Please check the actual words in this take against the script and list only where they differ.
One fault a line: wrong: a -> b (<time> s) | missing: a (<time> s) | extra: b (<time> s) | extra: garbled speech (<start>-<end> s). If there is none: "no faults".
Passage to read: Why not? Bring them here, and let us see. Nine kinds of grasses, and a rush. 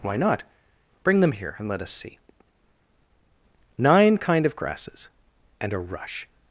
wrong: kinds -> kind (4.2 s)